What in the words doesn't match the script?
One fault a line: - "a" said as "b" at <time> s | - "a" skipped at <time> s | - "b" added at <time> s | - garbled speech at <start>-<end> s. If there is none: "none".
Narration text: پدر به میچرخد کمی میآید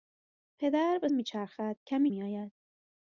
none